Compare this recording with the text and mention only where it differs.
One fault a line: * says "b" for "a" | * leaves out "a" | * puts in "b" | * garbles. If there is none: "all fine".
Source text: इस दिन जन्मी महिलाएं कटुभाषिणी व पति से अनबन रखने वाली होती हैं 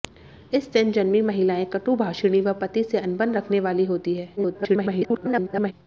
* garbles